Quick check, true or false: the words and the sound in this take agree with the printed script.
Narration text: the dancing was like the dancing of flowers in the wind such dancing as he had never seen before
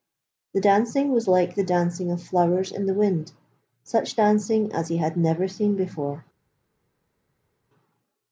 true